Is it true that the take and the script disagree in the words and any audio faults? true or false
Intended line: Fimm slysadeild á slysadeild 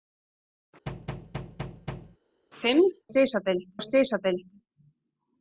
true